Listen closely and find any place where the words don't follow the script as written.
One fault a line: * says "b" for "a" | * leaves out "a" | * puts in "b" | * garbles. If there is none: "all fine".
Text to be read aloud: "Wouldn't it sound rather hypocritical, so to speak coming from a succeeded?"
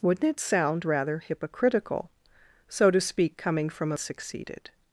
all fine